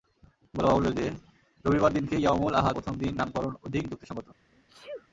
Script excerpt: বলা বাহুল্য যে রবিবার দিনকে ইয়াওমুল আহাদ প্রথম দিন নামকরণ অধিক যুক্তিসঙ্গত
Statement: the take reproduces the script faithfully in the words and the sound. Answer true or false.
false